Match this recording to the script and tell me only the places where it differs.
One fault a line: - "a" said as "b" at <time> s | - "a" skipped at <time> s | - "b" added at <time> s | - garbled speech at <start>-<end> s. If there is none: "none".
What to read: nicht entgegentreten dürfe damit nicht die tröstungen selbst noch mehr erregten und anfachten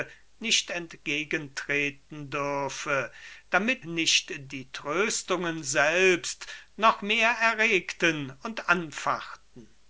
none